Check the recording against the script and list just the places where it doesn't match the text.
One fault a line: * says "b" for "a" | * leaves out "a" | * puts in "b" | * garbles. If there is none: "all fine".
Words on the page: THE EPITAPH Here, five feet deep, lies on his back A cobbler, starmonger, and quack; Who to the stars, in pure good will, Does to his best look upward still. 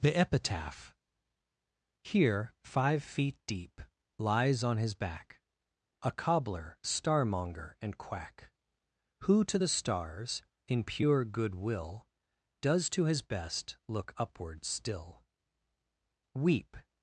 * puts in "Weep"